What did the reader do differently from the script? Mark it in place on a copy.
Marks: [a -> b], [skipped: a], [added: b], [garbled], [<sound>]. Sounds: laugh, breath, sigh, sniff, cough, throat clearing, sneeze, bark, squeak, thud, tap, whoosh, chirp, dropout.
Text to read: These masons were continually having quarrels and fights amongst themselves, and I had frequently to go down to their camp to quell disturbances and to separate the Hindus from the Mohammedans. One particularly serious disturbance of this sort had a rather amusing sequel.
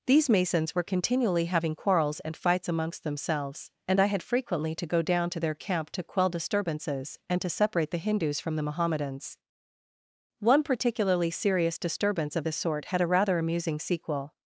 These masons were continually having quarrels and fights amongst themselves, and I had frequently to go down to their camp to quell disturbances and to separate the Hindus from the Mohammedans. One particularly serious disturbance of this sort had a rather amusing sequel.